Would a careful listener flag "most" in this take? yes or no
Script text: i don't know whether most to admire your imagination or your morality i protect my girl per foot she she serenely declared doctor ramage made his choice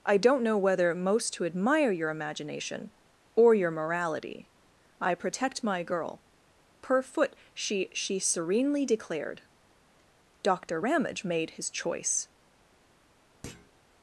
no